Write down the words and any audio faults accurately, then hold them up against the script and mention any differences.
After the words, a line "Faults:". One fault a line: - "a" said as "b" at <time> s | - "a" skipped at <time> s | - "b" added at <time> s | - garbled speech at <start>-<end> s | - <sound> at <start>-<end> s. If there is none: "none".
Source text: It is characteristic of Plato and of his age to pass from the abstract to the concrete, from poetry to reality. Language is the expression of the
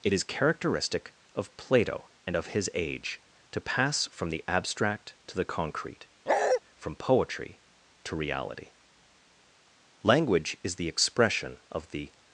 It is characteristic of Plato and of his age to pass from the abstract to the concrete, from poetry to reality. Language is the expression of the
Faults:
- bark at 6.3-6.6 s